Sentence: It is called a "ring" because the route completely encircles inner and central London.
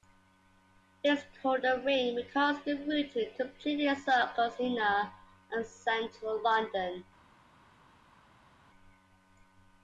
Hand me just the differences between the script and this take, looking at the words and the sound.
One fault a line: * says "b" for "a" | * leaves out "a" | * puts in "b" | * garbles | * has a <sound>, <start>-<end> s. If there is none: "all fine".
all fine